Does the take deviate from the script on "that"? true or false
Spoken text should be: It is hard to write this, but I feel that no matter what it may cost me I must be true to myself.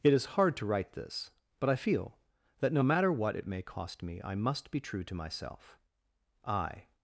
false